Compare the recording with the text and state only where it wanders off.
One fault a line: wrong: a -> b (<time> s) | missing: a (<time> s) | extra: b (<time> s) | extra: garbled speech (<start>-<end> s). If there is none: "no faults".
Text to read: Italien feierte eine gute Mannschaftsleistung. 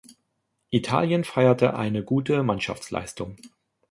no faults